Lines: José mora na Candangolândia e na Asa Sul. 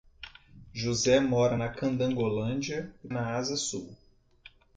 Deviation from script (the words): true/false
false